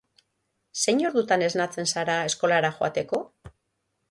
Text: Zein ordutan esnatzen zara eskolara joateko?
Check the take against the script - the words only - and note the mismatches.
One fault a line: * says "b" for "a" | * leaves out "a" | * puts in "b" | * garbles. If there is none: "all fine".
all fine